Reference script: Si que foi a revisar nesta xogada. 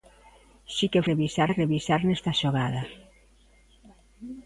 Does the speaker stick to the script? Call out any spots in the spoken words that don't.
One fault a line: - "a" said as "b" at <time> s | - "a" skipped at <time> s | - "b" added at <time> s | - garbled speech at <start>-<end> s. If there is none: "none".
- "foi" said as "revisar" at 1.1 s